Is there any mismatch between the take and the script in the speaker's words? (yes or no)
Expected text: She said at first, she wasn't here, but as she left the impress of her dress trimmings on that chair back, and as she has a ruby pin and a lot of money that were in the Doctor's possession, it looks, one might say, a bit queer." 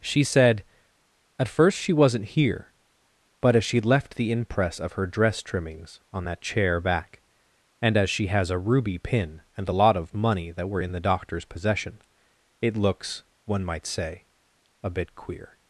no